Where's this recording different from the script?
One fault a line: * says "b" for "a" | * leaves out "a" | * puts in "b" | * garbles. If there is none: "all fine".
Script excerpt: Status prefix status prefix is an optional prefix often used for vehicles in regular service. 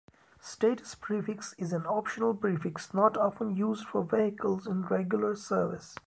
* leaves out "status prefix"
* puts in "not"